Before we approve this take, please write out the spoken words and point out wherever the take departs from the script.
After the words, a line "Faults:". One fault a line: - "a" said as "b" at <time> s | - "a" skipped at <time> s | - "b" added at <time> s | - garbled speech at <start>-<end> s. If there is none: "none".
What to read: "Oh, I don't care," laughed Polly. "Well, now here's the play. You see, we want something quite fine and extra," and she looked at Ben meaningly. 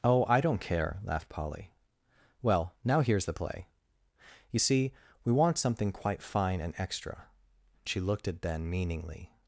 "Oh, I don't care," laughed Polly. "Well, now here's the play. You see, we want something quite fine and extra," she looked at Ben meaningly.
Faults:
- "and" skipped at 7.3 s